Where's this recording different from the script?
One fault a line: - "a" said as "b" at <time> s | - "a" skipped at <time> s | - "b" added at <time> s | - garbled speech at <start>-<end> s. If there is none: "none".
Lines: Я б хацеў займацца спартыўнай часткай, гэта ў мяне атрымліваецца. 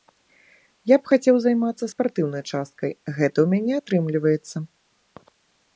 none